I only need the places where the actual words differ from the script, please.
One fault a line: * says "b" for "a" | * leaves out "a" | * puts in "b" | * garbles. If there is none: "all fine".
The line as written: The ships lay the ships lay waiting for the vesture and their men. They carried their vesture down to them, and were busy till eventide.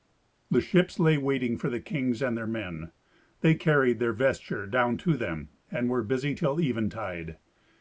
* leaves out "the ships lay"
* says "kings" for "vesture"